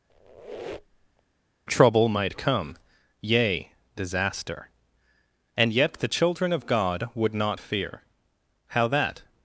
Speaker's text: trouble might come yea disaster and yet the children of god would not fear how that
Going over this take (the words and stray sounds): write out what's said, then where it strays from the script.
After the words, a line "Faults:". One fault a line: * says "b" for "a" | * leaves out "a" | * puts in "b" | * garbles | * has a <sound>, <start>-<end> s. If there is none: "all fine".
trouble might come yea disaster and yet the children of god would not fear how that
Faults:
* has a squeak, 0.1-1.2 s